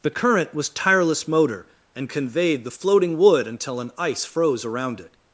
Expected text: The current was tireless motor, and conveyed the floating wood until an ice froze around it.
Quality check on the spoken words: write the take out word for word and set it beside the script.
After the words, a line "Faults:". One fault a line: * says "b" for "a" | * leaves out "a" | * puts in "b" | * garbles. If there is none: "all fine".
The current was tireless motor, and conveyed the floating wood until an ice froze around it.
Faults:
all fine